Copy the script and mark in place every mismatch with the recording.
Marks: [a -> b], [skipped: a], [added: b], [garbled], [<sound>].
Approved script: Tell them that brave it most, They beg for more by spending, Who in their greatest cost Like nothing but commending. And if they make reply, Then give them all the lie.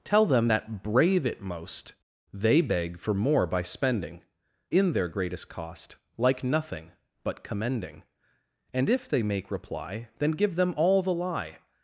Tell them that brave it most, They beg for more by spending, [skipped: Who] in their greatest cost Like nothing but commending. And if they make reply, Then give them all the lie.